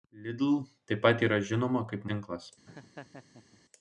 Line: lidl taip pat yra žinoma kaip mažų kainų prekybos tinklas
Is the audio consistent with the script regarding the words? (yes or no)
no